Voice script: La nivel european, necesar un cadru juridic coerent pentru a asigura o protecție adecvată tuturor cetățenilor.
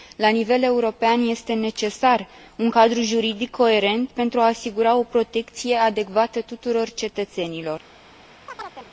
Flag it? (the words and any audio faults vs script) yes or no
yes